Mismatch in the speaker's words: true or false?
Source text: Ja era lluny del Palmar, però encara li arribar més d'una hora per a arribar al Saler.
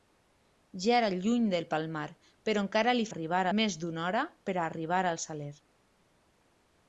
false